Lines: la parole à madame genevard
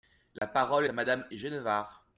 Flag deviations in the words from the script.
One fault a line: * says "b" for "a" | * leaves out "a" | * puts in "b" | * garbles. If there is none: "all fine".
all fine